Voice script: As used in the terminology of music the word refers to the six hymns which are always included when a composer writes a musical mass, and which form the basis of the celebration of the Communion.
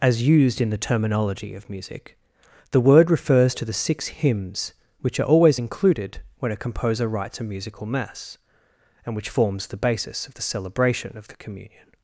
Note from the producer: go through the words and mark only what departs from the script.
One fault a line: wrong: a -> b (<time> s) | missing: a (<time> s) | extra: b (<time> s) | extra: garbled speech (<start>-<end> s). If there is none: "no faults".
wrong: form -> forms (9.3 s)